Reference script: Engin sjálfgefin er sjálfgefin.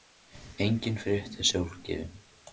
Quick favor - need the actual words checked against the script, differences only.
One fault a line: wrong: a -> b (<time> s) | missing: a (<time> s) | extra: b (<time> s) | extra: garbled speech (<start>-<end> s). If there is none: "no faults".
wrong: sjálfgefin -> frétt (1.0 s)